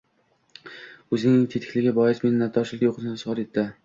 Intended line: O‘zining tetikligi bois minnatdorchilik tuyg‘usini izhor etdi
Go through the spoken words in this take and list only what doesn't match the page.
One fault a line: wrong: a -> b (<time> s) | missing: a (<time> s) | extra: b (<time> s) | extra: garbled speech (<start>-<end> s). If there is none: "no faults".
no faults